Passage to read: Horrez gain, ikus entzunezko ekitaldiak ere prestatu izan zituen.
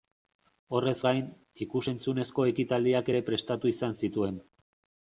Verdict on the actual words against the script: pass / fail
pass